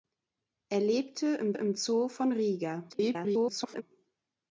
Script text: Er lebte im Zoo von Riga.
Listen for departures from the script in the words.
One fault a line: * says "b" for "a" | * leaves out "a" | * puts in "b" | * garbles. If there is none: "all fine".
* puts in "im"
* garbles